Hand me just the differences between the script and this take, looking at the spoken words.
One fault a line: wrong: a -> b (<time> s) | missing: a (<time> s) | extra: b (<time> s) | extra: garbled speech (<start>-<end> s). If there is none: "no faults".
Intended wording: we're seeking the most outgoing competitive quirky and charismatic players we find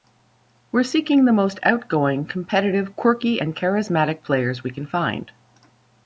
extra: can (4.7 s)